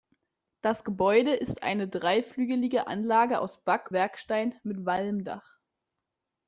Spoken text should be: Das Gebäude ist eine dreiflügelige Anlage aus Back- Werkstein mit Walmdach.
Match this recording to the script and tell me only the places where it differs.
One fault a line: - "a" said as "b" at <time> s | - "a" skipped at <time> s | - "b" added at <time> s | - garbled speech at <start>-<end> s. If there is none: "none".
none